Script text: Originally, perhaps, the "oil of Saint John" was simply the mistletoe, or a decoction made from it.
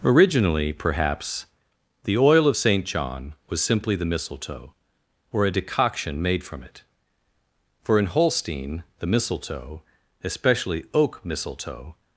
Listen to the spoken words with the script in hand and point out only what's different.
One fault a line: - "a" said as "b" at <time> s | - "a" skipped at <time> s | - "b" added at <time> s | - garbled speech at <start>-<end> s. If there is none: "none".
- "For in Holstein the mistletoe especially oak mistletoe" added at 7.8 s